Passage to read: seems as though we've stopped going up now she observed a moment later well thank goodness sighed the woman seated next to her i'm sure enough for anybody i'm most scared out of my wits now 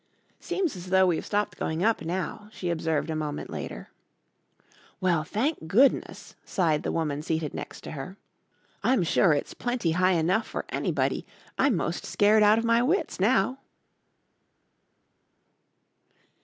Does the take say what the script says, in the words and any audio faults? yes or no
no